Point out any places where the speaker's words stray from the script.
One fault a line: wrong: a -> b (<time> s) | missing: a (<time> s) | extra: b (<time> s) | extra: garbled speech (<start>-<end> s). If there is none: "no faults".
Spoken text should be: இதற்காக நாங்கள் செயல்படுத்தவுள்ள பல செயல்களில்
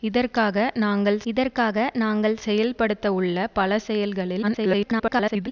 extra: இதற்காக நாங்கள் (1.3 s)
extra: garbled speech (4.4-5.5 s)